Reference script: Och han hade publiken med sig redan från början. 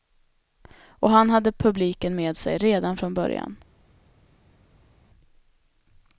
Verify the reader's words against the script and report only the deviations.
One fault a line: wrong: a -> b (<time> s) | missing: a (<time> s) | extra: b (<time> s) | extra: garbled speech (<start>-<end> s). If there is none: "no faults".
no faults